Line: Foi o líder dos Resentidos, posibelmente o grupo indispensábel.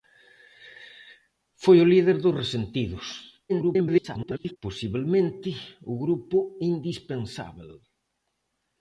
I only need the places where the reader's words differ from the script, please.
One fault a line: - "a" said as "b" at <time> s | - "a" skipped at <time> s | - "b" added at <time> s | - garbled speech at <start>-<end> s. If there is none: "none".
- garbled speech at 3.5-4.6 s